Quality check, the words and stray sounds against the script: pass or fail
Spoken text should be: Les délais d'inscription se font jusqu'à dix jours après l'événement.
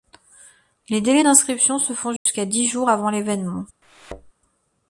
fail